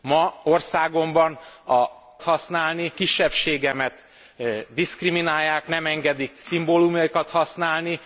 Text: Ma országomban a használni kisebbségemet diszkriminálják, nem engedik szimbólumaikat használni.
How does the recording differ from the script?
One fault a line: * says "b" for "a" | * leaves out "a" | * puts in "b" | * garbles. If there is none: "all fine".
all fine